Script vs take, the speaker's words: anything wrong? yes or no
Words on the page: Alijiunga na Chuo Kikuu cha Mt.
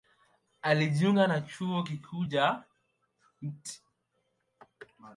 no